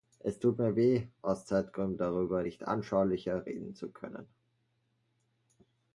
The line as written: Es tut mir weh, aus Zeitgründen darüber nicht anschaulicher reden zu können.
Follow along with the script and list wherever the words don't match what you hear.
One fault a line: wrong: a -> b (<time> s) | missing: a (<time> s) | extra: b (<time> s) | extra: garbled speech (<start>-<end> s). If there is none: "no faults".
no faults